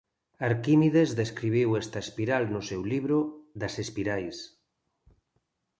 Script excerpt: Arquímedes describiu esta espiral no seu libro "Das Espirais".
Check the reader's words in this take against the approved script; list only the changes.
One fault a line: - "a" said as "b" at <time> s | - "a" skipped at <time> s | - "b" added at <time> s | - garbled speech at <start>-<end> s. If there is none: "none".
none